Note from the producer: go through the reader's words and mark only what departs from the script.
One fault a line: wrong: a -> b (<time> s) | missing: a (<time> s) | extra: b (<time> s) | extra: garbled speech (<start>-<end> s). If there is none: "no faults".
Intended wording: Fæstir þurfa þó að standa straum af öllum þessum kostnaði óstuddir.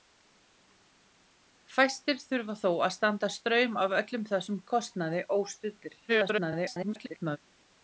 extra: garbled speech (6.1-7.4 s)